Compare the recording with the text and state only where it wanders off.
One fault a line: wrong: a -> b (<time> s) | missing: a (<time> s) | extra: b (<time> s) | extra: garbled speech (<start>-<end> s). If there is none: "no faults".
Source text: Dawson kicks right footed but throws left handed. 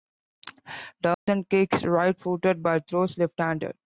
no faults